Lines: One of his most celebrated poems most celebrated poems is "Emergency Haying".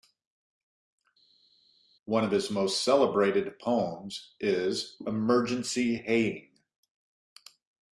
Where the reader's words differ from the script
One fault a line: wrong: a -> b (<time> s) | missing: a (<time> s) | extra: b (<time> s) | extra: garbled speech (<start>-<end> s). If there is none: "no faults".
missing: most celebrated poems (4.3 s)